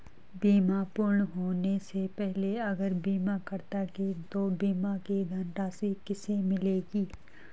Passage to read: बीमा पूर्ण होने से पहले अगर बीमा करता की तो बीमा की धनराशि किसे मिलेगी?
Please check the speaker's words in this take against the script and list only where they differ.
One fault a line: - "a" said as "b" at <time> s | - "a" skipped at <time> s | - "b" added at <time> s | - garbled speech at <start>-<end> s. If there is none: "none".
none